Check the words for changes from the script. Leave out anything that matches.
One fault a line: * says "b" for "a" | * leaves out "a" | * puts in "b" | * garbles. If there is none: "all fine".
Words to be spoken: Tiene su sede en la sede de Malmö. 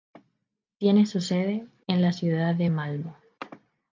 * says "ciudad" for "sede"